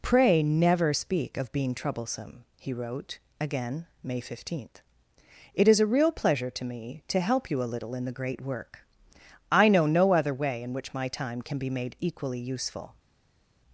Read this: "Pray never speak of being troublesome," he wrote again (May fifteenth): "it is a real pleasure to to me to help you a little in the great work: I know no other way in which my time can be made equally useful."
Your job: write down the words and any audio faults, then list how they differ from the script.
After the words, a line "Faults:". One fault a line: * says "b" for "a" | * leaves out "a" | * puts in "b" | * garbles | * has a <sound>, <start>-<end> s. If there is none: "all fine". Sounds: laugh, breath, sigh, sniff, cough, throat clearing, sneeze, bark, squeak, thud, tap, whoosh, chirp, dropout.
"Pray never speak of being troublesome," he wrote again (May fifteenth): "it is a real pleasure to me to help you a little in the great work: I know no other way in which my time can be made equally useful."
Faults:
* leaves out "to"